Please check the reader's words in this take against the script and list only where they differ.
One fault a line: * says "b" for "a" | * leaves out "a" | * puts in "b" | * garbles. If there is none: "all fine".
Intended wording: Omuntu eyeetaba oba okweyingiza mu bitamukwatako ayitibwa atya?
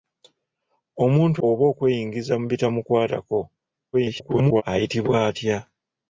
* leaves out "eyeetaba"
* garbles